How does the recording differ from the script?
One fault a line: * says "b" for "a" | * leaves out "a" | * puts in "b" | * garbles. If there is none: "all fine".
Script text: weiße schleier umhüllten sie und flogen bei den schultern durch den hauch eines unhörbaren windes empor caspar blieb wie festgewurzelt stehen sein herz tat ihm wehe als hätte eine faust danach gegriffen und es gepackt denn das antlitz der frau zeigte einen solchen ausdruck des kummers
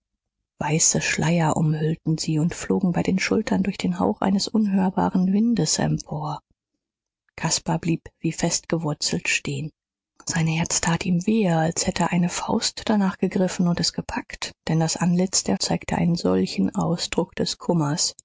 * leaves out "frau"